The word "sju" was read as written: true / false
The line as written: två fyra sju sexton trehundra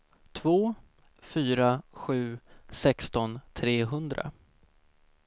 true